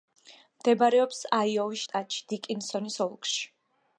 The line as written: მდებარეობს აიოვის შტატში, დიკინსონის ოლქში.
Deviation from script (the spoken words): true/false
false